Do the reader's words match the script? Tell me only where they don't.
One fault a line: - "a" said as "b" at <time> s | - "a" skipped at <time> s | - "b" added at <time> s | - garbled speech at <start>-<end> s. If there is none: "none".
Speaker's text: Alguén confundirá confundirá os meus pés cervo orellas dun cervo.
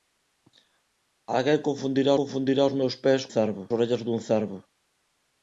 none